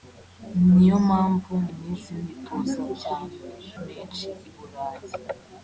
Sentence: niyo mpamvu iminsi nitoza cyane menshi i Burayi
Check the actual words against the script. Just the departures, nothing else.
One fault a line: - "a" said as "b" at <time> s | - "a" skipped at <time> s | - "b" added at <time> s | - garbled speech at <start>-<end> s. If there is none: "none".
none